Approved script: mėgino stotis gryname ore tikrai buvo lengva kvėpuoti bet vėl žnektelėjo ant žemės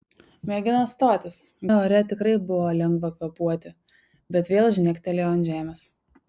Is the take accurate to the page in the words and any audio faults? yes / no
no